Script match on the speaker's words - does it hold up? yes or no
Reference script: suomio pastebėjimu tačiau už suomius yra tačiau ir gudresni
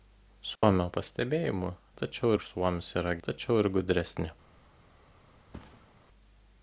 yes